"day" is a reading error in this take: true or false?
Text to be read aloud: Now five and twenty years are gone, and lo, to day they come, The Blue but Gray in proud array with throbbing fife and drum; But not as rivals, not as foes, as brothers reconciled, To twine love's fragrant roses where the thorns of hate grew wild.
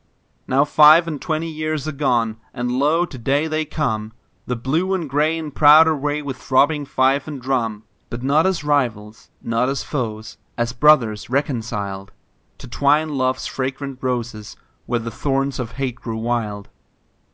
false